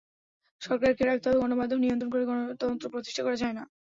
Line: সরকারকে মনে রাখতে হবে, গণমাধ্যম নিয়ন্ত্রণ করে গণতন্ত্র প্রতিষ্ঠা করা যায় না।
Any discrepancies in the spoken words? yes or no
yes